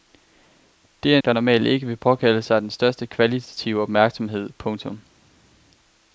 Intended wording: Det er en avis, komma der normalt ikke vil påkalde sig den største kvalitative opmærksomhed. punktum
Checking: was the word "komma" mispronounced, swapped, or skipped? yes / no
yes